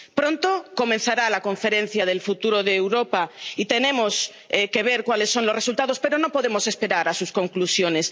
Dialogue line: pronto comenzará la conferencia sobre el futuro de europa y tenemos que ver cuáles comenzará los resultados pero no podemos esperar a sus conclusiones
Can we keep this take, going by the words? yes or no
no